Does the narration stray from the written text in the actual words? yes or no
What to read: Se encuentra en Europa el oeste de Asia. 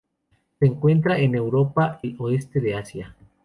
no